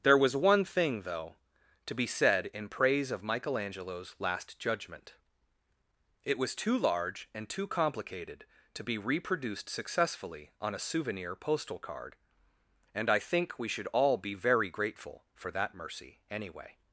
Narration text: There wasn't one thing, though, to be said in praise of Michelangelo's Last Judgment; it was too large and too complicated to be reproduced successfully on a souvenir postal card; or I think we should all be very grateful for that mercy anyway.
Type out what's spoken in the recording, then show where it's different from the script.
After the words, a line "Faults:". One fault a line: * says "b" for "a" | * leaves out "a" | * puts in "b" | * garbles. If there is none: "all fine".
There was one thing, though, to be said in praise of Michelangelo's Last Judgment; it was too large and too complicated to be reproduced successfully on a souvenir postal card; and I think we should all be very grateful for that mercy anyway.
Faults:
* says "was" for "wasn't"
* says "and" for "or"